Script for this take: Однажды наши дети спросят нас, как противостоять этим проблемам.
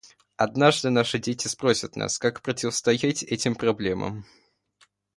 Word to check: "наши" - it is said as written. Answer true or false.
true